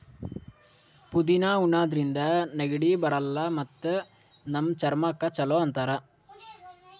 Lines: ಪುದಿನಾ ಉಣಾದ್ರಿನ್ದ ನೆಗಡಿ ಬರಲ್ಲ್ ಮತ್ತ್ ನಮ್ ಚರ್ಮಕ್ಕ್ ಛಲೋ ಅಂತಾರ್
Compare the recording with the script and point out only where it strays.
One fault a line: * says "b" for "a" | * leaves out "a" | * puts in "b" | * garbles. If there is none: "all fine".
all fine